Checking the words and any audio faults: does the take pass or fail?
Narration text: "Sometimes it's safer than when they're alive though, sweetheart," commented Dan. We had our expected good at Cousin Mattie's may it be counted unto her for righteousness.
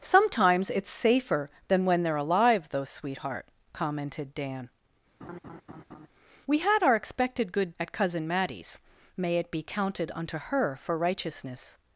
fail